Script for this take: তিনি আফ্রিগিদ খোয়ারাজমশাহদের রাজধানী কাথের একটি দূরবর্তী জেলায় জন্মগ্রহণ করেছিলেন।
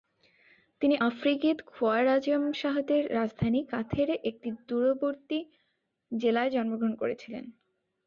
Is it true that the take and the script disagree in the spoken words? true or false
false